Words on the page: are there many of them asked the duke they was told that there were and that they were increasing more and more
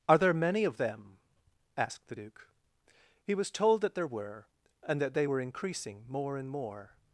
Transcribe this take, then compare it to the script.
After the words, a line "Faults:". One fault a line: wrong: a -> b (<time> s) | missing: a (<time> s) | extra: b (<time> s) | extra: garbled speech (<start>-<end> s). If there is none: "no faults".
are there many of them asked the duke he was told that there were and that they were increasing more and more
Faults:
wrong: they -> he (3.2 s)